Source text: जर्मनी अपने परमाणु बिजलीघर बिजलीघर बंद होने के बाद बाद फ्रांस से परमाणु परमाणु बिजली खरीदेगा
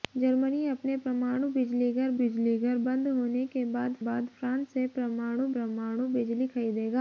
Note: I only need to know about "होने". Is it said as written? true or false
true